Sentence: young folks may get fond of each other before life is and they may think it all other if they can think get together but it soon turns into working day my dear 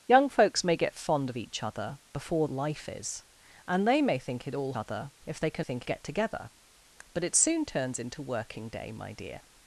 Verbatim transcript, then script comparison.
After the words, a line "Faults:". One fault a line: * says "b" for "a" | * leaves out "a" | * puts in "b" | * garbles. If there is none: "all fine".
young folks may get fond of each other before life is and they may think it all other if they can think get together but it soon turns into working day my dear
Faults:
all fine